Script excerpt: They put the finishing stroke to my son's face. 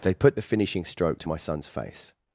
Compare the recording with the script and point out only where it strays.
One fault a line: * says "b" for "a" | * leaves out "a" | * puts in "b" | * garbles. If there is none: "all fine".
all fine